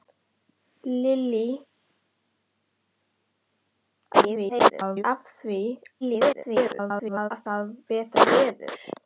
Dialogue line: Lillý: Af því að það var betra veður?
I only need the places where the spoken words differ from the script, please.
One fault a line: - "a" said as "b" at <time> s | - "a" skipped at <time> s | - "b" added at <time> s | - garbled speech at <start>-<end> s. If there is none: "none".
- garbled speech at 4.1-5.0 s
- garbled speech at 6.0-7.3 s
- "var" skipped at 7.7 s